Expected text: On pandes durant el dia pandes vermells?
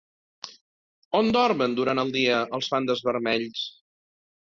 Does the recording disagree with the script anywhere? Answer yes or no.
yes